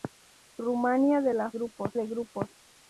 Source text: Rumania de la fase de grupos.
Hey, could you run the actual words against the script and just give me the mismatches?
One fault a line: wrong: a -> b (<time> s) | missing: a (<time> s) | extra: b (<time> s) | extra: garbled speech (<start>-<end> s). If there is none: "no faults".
wrong: fase -> grupos (1.5 s)